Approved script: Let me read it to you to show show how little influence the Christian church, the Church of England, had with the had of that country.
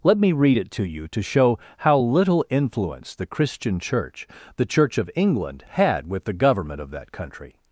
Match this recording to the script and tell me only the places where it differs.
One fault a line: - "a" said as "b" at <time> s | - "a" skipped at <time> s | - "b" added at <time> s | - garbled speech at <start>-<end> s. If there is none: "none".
- "show" skipped at 1.6 s
- "had" said as "government" at 6.3 s